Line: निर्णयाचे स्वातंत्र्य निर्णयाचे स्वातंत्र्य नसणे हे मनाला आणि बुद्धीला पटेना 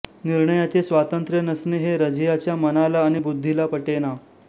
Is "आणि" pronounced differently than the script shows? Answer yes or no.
no